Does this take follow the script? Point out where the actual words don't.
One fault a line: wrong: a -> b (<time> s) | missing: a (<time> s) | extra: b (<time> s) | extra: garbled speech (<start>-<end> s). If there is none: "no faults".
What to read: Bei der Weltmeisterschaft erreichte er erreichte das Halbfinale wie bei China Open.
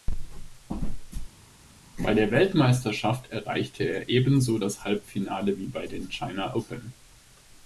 wrong: erreichte -> ebenso (4.1 s)
extra: den (5.8 s)